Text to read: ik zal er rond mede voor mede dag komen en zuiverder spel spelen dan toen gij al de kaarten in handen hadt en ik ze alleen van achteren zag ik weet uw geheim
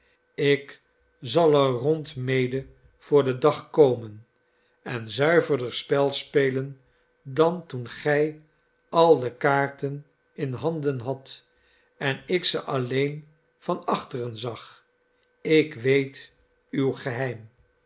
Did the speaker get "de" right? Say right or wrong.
right